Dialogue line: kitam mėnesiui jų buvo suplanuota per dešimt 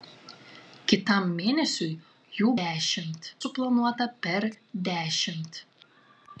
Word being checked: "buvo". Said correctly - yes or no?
no